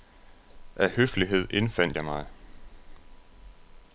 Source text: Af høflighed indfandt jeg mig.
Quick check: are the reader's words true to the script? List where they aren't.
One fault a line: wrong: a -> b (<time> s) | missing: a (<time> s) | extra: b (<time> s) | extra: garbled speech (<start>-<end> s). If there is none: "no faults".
no faults